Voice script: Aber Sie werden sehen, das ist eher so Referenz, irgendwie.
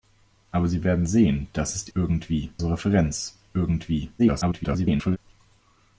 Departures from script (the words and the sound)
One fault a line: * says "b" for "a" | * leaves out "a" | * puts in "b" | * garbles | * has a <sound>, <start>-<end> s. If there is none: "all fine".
* says "irgendwie" for "eher"
* garbles